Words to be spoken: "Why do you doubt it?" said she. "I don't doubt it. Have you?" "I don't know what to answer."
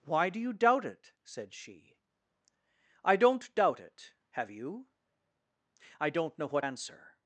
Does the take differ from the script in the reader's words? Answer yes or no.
yes